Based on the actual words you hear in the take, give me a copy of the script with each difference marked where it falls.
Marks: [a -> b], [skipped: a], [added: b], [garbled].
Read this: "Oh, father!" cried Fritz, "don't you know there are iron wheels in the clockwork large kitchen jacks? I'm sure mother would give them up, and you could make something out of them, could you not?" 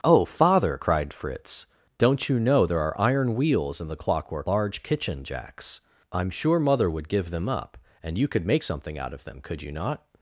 "Oh, father!" cried Fritz, "don't you know there are iron wheels in the clockwork large kitchen jacks? I'm sure mother would give them up, and you could make something out of them, could you not?"